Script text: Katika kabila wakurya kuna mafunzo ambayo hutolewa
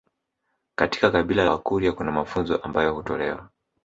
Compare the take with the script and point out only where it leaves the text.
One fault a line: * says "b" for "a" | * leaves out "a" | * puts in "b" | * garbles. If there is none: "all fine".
all fine